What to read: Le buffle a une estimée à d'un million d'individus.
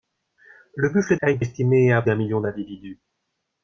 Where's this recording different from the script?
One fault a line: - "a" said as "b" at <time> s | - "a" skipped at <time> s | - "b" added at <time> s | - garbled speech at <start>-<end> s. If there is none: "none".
none